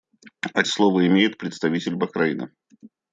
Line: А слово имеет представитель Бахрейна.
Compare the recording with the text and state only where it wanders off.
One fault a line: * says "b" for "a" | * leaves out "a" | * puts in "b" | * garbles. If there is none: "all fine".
all fine